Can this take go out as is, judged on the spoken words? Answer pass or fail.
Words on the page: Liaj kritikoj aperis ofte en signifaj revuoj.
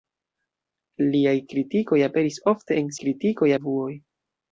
fail